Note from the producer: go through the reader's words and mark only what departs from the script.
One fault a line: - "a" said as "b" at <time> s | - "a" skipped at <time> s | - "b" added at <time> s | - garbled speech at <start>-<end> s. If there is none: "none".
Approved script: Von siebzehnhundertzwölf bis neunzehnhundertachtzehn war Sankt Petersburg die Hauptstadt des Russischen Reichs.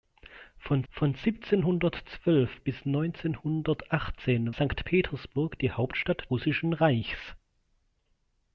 - "von" added at 0.9 s
- "war" skipped at 4.5 s
- "des" skipped at 6.3 s